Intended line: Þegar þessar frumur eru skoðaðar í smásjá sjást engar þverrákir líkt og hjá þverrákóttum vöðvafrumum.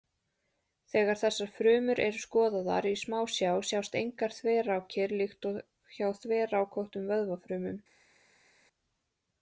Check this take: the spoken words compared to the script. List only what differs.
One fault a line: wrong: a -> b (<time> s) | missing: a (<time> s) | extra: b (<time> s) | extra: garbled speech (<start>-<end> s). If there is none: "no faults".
no faults